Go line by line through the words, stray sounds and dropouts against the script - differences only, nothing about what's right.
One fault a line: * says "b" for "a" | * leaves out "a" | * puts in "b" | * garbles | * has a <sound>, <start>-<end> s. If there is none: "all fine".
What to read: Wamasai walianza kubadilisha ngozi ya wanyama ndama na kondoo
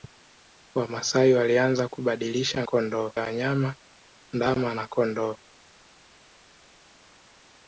* says "kondoo" for "ngozi"